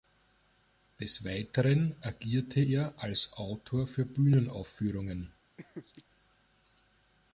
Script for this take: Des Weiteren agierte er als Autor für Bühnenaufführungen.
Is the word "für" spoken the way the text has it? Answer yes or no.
yes